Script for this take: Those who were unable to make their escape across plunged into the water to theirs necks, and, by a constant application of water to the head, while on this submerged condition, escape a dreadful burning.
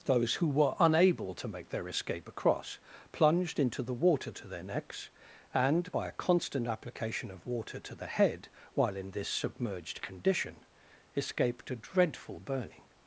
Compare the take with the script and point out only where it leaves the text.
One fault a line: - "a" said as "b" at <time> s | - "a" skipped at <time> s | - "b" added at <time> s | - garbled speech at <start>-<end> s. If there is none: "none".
- "theirs" said as "their" at 4.5 s
- "on" said as "in" at 9.0 s
- "escape" said as "escaped" at 11.2 s